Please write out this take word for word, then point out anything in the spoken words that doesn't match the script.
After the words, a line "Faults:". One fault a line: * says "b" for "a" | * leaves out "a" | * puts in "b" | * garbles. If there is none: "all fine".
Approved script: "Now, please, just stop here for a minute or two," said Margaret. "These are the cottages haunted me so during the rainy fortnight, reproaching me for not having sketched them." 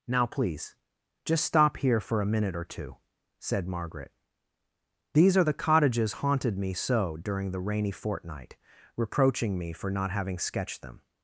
"Now, please, just stop here for a minute or two," said Margaret. "These are the cottages haunted me so during the rainy fortnight, reproaching me for not having sketched them."
Faults:
all fine